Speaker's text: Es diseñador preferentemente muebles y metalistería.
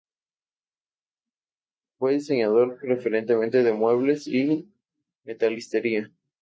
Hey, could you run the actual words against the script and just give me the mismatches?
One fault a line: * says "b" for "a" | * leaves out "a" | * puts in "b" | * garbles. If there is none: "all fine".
* says "Fue" for "Es"
* puts in "de"